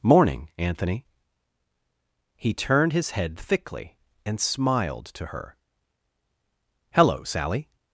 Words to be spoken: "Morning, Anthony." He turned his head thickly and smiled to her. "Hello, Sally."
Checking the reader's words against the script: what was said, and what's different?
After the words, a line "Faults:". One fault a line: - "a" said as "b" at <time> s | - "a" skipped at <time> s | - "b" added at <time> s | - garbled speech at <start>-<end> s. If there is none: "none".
"Morning, Anthony." He turned his head thickly and smiled to her. "Hello, Sally."
Faults:
none